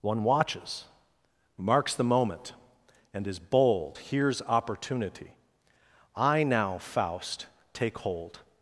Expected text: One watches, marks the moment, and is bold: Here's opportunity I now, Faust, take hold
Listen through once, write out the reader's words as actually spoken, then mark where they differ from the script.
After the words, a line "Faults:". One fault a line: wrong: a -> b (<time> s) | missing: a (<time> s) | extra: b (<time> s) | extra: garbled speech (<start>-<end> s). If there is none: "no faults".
One watches, marks the moment, and is bold: Here's opportunity I now, Faust, take hold
Faults:
no faults